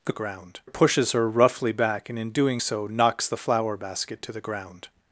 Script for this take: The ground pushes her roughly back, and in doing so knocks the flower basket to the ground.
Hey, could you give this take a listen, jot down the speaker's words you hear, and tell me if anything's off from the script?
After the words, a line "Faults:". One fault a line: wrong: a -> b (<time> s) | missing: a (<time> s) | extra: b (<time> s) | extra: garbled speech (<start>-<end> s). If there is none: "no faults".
The ground pushes her roughly back, and in doing so knocks the flower basket to the ground.
Faults:
no faults